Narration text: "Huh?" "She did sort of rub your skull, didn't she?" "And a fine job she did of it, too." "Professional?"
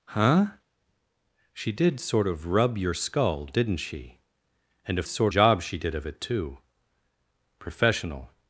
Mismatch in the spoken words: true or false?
true